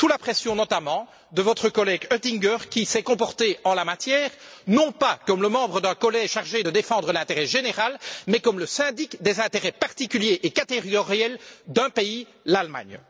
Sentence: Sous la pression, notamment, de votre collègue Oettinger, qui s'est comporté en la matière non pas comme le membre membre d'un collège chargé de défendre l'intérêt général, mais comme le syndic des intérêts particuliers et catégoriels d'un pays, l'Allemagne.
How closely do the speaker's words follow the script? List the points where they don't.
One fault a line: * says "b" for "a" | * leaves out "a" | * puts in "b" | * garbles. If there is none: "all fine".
* leaves out "membre"